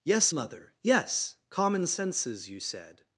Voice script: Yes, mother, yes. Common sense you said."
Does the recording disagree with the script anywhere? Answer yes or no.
yes